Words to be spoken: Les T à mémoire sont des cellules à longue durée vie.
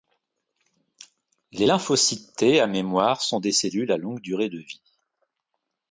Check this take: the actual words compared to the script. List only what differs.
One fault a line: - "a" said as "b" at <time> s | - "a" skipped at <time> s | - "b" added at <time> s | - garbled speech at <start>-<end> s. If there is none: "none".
- "lymphocytes" added at 1.6 s
- "de" added at 4.5 s